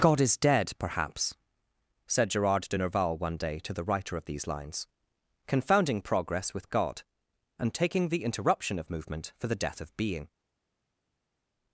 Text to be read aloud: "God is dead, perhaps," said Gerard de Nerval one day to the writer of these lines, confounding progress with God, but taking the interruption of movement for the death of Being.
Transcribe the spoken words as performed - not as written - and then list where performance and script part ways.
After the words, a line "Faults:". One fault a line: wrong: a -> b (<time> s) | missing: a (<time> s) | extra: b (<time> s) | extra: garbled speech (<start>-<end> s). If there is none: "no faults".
"God is dead, perhaps," said Gerard de Nerval one day to the writer of these lines, confounding progress with God, and taking the interruption of movement for the death of Being.
Faults:
wrong: but -> and (7.6 s)